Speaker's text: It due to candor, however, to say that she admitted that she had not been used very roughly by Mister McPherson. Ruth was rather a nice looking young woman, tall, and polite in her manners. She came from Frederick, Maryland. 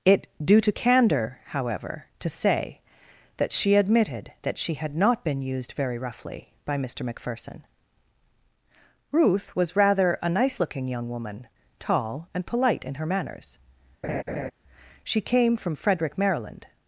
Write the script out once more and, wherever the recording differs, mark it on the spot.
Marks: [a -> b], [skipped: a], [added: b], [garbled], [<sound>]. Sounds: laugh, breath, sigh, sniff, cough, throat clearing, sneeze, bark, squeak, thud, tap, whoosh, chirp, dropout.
It due to candor, however, to say that she admitted that she had not been used very roughly by Mister McPherson. Ruth was rather a nice looking young woman, tall, and polite in her manners. [laugh] She came from Frederick, Maryland.